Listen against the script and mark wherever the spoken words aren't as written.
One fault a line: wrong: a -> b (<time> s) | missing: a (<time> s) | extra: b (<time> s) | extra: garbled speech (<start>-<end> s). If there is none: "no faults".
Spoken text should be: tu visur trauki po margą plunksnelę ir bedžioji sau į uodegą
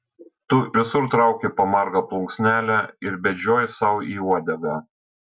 no faults